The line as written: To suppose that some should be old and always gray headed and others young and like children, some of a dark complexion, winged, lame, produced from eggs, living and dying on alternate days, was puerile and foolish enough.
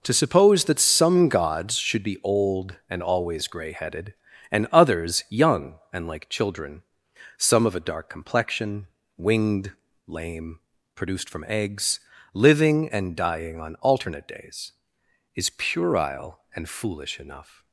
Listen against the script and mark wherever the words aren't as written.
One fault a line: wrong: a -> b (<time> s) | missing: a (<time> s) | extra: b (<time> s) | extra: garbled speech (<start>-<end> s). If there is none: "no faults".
extra: gods (1.3 s)
wrong: was -> is (15.3 s)